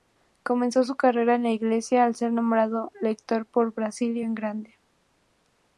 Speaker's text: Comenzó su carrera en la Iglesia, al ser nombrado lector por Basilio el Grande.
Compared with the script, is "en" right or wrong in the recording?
right